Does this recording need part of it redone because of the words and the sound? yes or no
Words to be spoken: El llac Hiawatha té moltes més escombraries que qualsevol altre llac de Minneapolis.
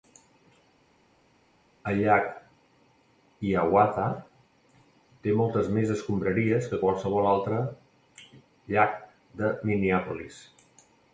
no